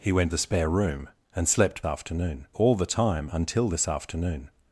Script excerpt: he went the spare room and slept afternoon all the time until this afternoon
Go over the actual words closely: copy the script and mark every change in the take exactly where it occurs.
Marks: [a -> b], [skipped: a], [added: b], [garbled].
he went the spare room and slept afternoon all the time until this afternoon